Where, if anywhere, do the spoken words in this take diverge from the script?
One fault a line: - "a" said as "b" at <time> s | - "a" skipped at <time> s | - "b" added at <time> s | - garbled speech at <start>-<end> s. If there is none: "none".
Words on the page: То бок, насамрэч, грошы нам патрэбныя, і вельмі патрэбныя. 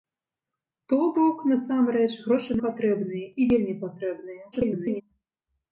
- "нам" skipped at 2.6 s
- garbled speech at 4.5-5.0 s